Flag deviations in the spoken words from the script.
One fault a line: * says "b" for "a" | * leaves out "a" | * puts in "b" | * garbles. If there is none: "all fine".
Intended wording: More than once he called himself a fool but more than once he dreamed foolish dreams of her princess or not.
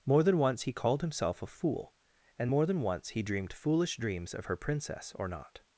* says "and" for "but"